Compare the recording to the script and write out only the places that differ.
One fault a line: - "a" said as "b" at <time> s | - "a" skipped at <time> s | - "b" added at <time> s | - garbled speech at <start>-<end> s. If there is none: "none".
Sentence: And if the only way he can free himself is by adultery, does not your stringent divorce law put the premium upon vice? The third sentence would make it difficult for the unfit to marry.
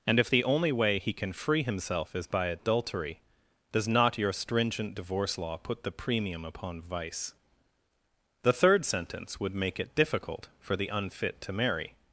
none